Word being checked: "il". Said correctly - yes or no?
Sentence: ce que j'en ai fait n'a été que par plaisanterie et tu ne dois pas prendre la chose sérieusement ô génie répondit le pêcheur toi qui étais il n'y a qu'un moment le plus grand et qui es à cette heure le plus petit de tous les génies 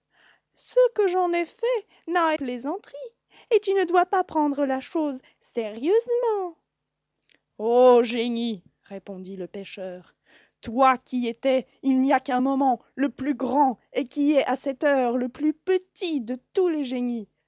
yes